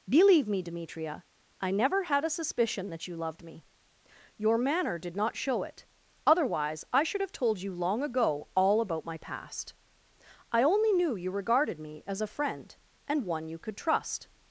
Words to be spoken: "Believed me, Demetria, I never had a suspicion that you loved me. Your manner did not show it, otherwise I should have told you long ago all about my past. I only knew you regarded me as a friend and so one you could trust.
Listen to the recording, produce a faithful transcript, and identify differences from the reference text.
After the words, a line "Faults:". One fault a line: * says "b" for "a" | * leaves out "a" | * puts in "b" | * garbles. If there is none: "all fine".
"Believe me, Demetria, I never had a suspicion that you loved me. Your manner did not show it, otherwise I should have told you long ago all about my past. I only knew you regarded me as a friend and one you could trust.
Faults:
* says "Believe" for "Believed"
* leaves out "so"